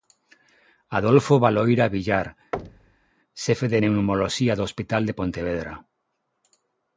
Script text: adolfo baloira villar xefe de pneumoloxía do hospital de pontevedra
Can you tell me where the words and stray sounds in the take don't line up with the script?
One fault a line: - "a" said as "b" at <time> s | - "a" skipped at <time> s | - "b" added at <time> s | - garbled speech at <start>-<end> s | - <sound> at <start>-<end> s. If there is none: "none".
- thud at 2.5-3.1 s